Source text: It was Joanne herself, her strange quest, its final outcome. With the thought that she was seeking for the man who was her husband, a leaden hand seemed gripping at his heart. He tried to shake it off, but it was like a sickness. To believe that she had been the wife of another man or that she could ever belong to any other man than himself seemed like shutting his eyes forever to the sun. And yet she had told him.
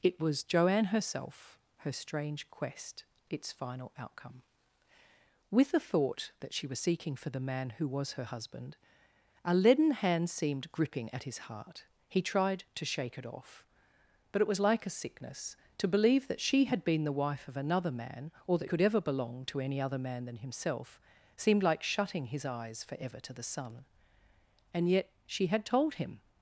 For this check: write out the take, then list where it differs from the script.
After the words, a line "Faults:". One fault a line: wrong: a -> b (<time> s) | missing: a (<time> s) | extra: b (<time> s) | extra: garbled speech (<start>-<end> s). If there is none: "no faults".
It was Joanne herself, her strange quest, its final outcome. With the thought that she was seeking for the man who was her husband, a leaden hand seemed gripping at his heart. He tried to shake it off, but it was like a sickness. To believe that she had been the wife of another man or that could ever belong to any other man than himself seemed like shutting his eyes forever to the sun. And yet she had told him.
Faults:
missing: she (18.7 s)